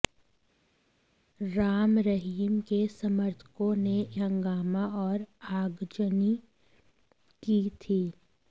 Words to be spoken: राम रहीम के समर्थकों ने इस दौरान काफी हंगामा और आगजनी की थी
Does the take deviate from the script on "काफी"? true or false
true